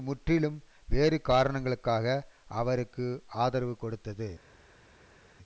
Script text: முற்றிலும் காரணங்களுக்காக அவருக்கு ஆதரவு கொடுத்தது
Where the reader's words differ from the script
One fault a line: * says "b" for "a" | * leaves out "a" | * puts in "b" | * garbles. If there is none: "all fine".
* puts in "வேறு"